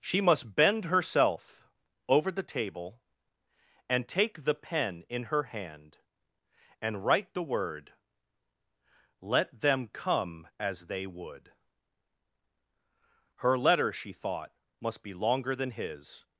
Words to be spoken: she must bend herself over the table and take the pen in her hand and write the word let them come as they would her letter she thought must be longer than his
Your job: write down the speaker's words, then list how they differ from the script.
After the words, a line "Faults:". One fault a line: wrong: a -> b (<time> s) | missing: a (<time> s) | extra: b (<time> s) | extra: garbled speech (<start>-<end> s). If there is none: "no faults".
she must bend herself over the table and take the pen in her hand and write the word let them come as they would her letter she thought must be longer than his
Faults:
no faults